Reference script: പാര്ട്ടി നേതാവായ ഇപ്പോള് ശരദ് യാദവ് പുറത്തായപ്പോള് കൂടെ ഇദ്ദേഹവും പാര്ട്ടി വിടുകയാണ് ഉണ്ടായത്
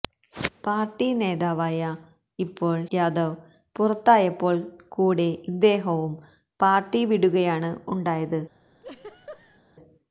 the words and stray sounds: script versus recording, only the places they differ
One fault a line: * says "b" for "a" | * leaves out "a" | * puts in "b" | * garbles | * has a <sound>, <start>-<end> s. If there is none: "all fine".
* leaves out "ശരദ്"
* has a laugh, 8.8-9.6 s